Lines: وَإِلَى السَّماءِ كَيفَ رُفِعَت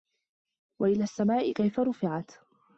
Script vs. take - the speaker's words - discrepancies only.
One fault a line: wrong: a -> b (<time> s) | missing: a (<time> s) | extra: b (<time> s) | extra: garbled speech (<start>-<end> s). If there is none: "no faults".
no faults